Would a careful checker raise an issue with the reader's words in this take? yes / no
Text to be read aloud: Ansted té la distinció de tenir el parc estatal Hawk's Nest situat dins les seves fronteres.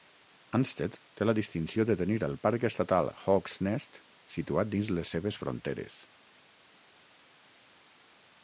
no